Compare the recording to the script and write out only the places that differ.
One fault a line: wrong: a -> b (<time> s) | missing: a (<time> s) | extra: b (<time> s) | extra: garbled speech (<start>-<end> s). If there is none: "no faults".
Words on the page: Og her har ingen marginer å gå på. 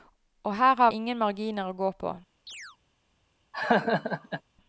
no faults